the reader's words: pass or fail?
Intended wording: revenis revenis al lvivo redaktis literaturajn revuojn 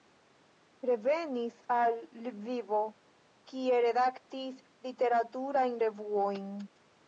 fail